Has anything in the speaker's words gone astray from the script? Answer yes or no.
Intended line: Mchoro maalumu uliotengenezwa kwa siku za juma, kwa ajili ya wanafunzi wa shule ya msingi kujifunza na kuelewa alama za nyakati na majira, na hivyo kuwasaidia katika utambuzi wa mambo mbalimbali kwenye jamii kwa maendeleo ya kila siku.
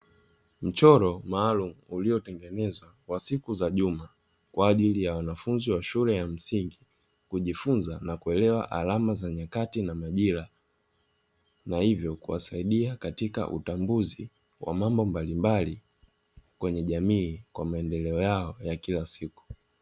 yes